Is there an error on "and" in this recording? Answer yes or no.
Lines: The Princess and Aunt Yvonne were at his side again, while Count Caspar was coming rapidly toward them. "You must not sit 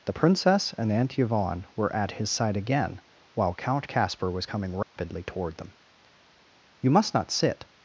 no